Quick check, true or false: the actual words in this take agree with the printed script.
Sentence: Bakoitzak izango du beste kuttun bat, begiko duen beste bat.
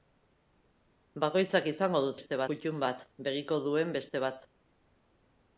true